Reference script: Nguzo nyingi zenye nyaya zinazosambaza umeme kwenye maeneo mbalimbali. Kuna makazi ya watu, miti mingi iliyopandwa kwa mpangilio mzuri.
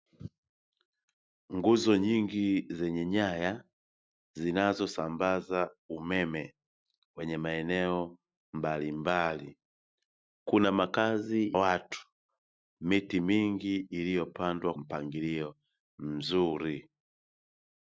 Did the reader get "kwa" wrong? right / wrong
wrong